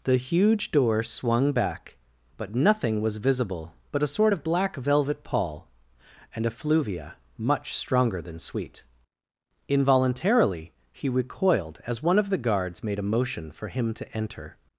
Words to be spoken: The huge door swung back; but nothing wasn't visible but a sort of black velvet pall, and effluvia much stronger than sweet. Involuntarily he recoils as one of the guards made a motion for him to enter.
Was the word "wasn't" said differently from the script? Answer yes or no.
yes